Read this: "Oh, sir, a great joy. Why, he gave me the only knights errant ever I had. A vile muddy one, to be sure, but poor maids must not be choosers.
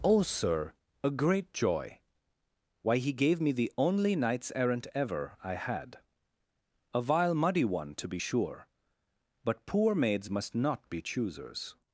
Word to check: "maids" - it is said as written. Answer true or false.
true